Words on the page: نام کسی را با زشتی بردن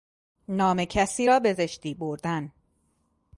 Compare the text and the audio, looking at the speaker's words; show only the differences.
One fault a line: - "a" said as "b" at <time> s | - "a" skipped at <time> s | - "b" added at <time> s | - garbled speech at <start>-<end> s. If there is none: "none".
- "با" said as "به" at 1.4 s